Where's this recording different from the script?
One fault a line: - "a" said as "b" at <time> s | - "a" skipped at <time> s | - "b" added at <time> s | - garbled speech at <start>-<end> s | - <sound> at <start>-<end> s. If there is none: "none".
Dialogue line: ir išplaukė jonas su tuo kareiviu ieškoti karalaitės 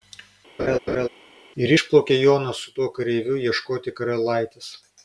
- laugh at 0.6-1.1 s